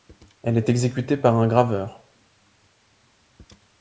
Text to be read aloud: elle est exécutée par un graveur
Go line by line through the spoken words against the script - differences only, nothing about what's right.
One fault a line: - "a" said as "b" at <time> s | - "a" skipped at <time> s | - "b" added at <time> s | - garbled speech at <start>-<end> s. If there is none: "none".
none